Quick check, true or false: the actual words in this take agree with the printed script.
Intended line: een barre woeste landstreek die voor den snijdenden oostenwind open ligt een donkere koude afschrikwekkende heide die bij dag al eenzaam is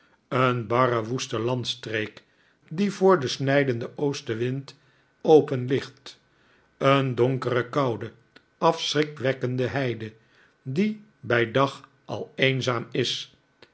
true